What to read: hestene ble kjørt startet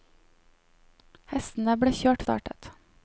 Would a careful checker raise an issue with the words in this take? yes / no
no